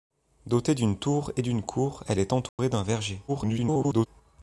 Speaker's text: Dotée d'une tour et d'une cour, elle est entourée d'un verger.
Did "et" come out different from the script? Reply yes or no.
no